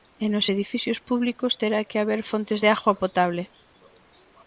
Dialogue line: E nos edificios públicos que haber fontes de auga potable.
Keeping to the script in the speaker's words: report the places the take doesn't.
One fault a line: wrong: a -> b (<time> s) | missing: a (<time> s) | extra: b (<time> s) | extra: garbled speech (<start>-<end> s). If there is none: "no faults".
extra: terá (1.6 s)